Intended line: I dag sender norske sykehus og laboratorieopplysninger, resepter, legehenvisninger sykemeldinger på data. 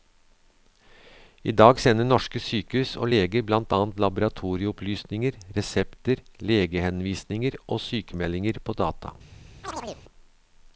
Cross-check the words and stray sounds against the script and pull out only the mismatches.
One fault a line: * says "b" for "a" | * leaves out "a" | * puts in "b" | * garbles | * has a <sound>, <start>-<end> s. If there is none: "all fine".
* puts in "leger blant annet"
* puts in "og"
* has a chirp, 9.6-10.0 s